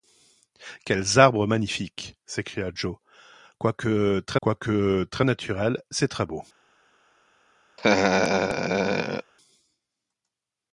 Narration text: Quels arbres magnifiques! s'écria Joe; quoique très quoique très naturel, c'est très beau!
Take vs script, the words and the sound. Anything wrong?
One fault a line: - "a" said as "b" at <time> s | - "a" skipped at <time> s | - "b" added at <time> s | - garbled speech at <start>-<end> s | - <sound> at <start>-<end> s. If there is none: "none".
- laugh at 7.8-9.3 s